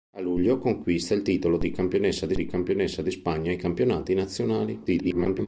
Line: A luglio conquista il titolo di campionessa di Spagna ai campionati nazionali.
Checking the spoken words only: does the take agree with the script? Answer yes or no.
no